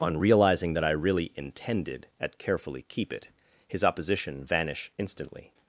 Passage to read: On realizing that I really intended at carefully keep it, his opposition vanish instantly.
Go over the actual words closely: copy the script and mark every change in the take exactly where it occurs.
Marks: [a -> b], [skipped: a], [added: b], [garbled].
On realizing that I really intended at carefully keep it, his opposition vanish instantly.